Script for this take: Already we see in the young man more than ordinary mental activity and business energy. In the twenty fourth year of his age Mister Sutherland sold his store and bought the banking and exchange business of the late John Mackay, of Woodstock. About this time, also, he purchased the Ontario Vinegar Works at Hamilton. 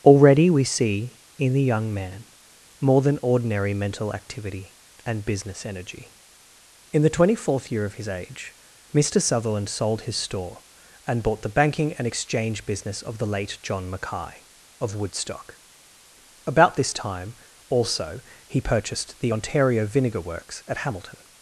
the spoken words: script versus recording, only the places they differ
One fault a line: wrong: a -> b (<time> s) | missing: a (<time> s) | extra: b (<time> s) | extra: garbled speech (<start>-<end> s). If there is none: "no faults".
no faults